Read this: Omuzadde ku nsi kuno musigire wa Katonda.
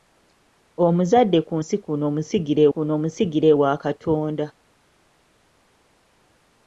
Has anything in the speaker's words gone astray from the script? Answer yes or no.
yes